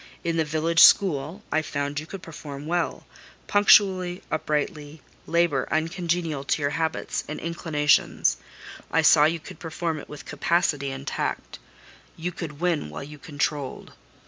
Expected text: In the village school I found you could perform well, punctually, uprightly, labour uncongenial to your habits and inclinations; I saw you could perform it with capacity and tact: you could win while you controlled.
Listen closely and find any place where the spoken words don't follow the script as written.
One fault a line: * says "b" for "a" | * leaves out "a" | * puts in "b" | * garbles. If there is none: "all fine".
all fine